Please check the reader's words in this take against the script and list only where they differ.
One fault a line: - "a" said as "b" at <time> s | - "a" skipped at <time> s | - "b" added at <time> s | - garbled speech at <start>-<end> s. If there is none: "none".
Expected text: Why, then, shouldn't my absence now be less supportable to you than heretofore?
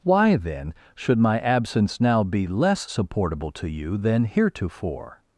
- "shouldn't" said as "should" at 0.9 s